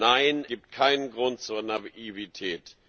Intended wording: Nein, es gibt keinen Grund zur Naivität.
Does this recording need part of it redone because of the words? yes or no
yes